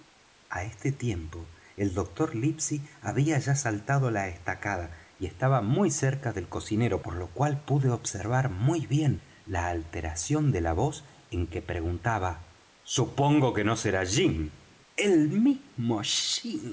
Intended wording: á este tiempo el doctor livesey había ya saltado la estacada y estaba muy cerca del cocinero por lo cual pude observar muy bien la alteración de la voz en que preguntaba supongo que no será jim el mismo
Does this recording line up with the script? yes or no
yes